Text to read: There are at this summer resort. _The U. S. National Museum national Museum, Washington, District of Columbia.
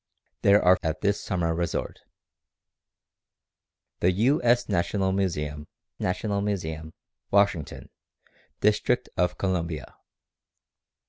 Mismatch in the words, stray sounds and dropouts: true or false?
false